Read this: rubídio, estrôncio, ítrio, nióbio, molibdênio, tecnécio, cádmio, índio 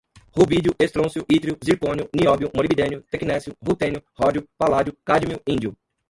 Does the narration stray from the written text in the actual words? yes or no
yes